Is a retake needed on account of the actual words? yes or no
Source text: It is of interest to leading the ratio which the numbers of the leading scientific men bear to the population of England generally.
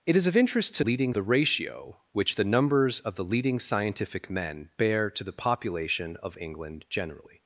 no